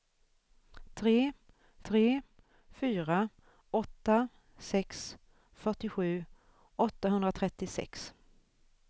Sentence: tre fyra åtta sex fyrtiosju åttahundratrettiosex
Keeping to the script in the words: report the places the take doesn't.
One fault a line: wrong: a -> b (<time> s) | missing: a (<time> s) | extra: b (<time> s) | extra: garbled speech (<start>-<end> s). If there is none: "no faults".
extra: tre (1.9 s)